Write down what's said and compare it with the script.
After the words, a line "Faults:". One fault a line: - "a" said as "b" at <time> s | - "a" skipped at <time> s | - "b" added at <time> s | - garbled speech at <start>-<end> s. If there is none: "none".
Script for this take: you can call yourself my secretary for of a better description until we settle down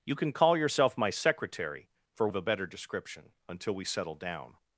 you can call yourself my secretary for of a better description until we settle down
Faults:
none